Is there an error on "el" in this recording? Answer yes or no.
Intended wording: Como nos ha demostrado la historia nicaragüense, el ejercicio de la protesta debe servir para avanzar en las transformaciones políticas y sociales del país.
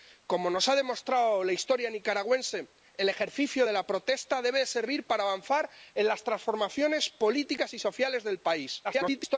no